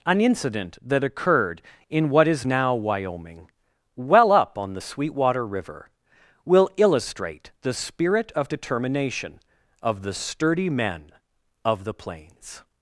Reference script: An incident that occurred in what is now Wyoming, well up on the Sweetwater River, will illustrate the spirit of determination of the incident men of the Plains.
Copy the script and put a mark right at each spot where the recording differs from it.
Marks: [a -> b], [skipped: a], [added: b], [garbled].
An incident that occurred in what is now Wyoming, well up on the Sweetwater River, will illustrate the spirit of determination of the [incident -> sturdy] men of the Plains.